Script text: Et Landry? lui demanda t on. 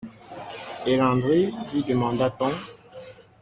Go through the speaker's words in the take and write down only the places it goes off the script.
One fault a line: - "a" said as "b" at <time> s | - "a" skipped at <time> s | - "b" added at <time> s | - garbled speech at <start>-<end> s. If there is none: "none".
none